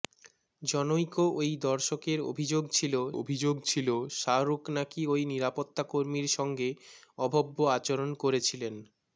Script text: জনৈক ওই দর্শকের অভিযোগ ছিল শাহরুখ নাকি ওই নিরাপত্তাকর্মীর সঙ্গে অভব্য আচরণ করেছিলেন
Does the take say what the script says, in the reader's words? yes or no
no